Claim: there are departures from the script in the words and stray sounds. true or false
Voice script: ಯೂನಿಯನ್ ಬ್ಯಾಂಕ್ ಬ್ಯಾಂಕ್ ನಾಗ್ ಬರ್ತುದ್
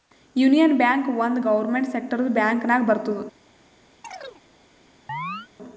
true